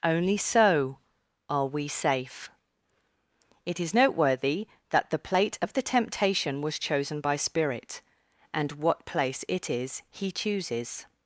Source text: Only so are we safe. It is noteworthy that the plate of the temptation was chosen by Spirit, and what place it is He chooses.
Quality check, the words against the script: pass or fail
pass